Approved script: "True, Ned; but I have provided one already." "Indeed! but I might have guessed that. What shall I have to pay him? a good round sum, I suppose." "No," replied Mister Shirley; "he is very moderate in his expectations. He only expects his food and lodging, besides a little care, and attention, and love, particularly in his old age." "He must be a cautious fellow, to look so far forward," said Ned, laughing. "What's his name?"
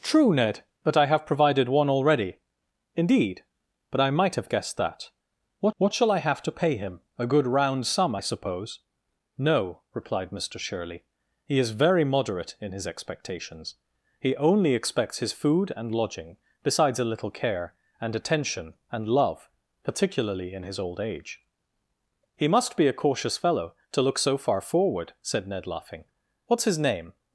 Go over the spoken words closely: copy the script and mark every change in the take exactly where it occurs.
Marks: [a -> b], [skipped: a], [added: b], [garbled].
"True, Ned; but I have provided one already." "Indeed! but I might have guessed that. What [added: what] shall I have to pay him? a good round sum, I suppose." "No," replied Mister Shirley; "he is very moderate in his expectations. He only expects his food and lodging, besides a little care, and attention, and love, particularly in his old age." "He must be a cautious fellow, to look so far forward," said Ned, laughing. "What's his name?"